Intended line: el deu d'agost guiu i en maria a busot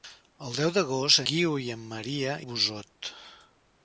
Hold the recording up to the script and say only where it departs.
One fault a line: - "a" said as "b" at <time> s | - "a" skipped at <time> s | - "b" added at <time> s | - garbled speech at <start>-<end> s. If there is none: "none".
none